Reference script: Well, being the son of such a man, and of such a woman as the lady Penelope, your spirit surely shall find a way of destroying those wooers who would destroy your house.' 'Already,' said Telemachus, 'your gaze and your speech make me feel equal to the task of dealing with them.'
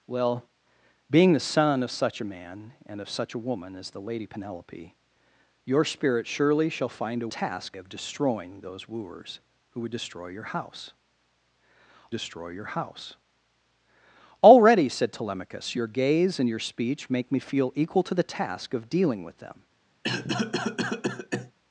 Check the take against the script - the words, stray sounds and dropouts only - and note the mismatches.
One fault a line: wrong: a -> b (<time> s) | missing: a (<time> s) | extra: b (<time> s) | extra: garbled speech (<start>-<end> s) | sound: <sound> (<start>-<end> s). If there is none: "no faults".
wrong: way -> task (7.3 s)
extra: destroy your house (12.1 s)
sound: cough (20.0-21.5 s)